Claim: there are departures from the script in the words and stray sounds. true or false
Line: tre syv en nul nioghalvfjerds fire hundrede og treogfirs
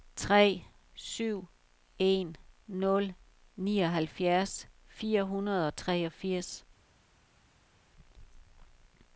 false